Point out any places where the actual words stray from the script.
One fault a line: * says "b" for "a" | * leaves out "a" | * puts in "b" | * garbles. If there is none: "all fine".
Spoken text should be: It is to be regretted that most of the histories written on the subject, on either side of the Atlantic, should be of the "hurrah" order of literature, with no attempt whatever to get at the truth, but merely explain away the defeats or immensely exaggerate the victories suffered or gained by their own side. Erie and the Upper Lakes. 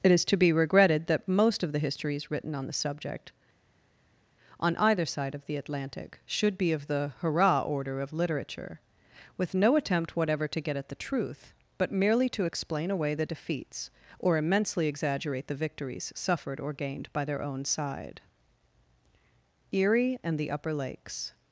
* puts in "to"